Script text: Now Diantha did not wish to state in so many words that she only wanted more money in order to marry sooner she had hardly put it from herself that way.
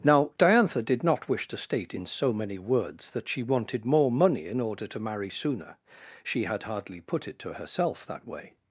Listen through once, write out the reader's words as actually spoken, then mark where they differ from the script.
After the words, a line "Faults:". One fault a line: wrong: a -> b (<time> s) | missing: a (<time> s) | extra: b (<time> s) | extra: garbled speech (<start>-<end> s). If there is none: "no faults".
Now Diantha did not wish to state in so many words that she wanted more money in order to marry sooner she had hardly put it to herself that way.
Faults:
missing: only (3.4 s)
wrong: from -> to (7.4 s)